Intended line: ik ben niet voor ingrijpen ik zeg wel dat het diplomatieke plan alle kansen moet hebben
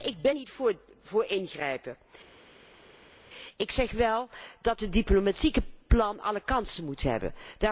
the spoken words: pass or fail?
pass